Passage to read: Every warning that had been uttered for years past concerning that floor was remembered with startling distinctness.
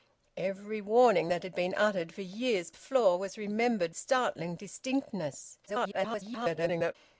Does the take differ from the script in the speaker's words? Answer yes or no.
yes